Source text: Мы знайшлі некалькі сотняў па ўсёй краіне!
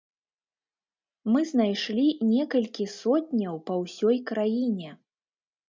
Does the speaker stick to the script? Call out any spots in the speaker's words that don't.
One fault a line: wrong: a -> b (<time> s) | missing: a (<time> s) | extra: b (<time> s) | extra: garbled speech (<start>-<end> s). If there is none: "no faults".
no faults